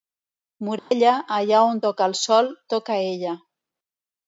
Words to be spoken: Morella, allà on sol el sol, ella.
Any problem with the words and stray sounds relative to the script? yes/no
yes